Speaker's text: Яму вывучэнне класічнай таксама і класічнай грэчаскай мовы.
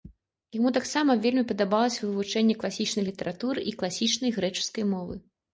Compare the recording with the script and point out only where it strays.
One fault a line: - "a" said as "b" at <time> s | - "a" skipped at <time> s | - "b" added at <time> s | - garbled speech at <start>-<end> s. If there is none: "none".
- "таксама вельмі падабалася" added at 0.8 s
- "таксама" said as "літаратуры" at 3.1 s